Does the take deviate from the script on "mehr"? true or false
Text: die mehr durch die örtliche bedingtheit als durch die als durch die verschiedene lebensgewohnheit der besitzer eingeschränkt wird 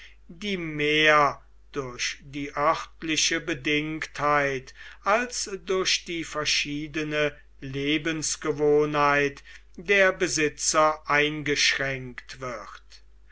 false